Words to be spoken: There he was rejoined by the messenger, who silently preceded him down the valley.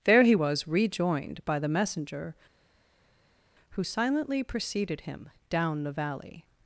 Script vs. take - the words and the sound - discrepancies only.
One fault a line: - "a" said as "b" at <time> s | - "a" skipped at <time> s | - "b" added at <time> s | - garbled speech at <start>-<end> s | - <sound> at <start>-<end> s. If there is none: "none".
none